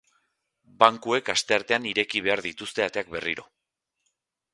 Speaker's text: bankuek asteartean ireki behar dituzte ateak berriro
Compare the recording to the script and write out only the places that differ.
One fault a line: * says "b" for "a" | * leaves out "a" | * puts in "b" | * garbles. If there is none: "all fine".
all fine